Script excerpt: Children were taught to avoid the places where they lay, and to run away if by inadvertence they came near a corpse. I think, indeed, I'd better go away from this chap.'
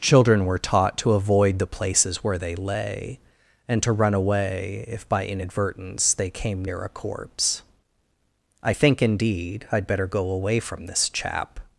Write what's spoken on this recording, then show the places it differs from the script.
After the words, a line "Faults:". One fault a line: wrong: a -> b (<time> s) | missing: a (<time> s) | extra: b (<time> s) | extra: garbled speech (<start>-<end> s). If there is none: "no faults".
Children were taught to avoid the places where they lay, and to run away if by inadvertence they came near a corpse. I think, indeed, I'd better go away from this chap.'
Faults:
no faults